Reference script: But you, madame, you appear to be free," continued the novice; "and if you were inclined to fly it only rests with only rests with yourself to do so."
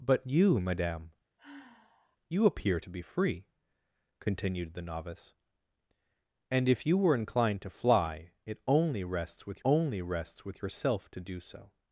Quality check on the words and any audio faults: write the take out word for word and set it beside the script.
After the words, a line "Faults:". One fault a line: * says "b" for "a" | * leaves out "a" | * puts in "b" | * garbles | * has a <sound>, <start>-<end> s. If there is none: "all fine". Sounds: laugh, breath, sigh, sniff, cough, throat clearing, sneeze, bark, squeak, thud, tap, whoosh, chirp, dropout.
But you, madame, you appear to be free," continued the novice; "and if you were inclined to fly it only rests with only rests with yourself to do so."
Faults:
* has a sigh, 1.4-2.2 s